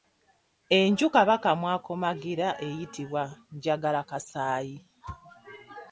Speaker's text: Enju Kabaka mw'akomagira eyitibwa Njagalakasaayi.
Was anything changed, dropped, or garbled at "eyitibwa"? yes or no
no